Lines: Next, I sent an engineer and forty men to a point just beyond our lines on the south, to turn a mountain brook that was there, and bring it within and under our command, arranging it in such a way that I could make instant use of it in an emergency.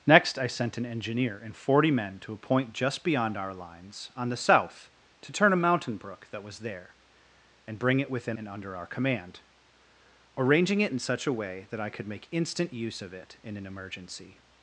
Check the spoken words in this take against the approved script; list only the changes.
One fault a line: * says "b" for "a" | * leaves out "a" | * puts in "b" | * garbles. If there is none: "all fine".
all fine